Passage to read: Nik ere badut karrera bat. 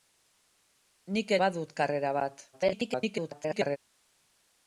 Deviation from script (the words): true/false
true